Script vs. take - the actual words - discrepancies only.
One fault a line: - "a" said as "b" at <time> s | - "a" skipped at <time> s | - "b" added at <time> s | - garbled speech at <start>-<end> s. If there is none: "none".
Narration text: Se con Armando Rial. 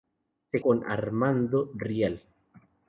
none